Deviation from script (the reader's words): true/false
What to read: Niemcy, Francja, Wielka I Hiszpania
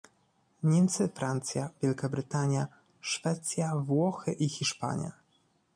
true